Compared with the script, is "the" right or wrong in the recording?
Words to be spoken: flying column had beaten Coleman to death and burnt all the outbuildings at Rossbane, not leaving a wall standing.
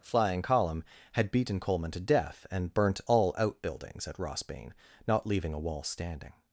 wrong